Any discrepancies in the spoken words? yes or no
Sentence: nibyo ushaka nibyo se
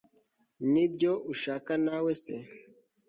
yes